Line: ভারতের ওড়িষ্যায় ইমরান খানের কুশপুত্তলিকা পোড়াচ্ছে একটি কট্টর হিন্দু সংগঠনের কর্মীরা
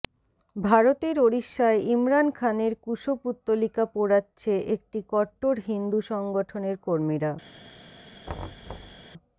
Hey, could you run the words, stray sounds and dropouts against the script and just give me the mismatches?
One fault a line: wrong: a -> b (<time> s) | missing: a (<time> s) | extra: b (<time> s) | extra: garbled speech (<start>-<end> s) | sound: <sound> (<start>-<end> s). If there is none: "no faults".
sound: thud (8.3-9.0 s)